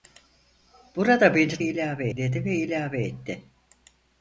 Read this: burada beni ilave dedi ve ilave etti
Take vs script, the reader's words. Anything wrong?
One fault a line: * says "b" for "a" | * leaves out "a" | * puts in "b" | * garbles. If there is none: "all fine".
all fine